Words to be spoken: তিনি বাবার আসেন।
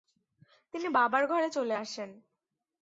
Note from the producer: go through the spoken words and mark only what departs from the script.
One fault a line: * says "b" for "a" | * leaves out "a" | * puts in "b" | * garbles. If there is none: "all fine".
* puts in "ঘরে চলে"